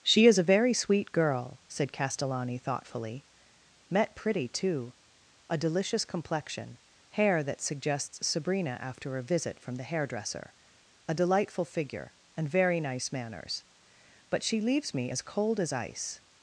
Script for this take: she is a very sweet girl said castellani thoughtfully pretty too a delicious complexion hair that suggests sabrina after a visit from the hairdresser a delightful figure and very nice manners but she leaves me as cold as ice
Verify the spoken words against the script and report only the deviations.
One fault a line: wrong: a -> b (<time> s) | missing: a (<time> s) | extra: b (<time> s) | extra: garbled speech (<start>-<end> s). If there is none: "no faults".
extra: met (3.9 s)